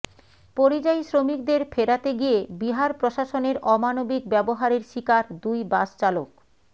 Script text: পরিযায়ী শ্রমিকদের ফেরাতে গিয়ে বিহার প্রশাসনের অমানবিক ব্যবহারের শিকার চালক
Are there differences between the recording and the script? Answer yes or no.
yes